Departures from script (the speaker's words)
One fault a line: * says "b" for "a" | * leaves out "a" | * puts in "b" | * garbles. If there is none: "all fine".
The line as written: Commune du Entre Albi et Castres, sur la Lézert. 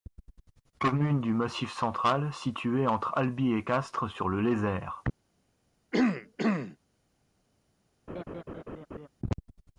* puts in "Massif central située"
* says "le" for "la"